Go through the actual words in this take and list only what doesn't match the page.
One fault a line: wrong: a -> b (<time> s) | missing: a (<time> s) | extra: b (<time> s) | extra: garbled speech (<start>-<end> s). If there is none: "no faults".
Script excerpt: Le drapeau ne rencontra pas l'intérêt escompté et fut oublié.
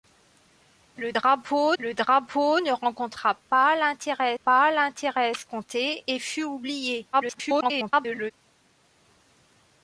extra: le drapeau (1.8 s)
extra: pas l'intérêt (4.4 s)
extra: garbled speech (7.1-8.3 s)